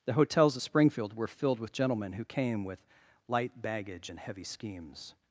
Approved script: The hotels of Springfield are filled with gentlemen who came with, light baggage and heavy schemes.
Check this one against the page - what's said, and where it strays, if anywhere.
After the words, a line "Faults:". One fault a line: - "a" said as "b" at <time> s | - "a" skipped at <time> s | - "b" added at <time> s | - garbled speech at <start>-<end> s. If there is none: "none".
The hotels of Springfield were filled with gentlemen who came with, light baggage and heavy schemes.
Faults:
- "are" said as "were" at 1.2 s